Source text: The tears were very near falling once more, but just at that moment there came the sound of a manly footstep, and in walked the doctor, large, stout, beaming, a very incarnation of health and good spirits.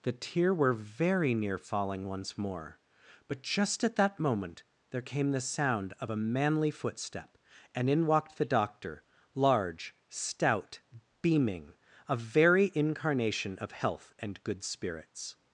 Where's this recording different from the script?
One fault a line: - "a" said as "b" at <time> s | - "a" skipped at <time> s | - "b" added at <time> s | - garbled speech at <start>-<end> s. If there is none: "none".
- "tears" said as "tear" at 0.1 s